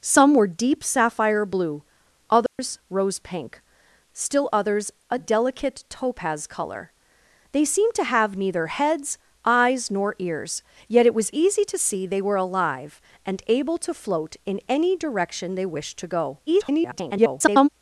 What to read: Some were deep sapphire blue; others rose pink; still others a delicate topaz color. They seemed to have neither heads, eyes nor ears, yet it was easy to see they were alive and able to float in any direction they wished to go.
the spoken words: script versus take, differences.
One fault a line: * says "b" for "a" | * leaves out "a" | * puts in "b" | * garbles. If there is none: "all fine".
* garbles